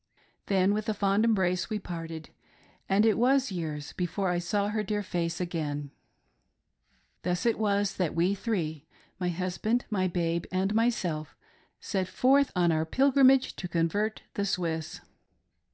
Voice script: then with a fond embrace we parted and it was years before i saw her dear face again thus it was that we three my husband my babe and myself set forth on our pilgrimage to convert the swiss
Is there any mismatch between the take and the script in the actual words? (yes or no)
no